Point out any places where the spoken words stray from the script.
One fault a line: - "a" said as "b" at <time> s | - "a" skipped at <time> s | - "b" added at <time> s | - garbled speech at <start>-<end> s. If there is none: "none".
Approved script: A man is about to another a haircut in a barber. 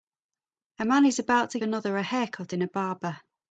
none